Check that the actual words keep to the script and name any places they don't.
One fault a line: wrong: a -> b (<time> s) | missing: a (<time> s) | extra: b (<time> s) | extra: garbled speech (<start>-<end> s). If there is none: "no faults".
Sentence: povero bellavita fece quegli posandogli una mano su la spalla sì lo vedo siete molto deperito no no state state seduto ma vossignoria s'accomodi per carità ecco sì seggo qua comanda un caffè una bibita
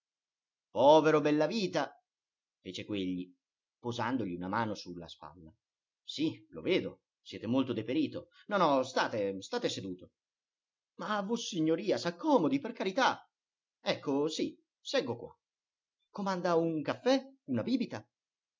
no faults